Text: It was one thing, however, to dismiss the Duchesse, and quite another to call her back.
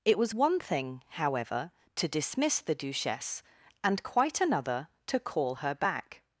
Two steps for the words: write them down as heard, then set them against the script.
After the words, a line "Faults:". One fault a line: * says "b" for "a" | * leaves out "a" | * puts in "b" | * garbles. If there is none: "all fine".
It was one thing, however, to dismiss the Duchesse, and quite another to call her back.
Faults:
all fine